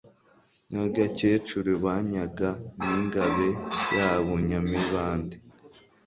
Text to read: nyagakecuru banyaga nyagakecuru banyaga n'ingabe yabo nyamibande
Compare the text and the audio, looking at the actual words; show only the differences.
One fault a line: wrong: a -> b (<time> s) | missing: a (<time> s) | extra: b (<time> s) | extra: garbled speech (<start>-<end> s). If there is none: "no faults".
missing: nyagakecuru banyaga (2.5 s)